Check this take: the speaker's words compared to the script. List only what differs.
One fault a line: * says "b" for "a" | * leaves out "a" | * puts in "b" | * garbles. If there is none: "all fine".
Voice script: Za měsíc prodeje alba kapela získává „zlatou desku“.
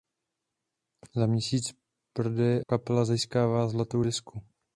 * leaves out "alba"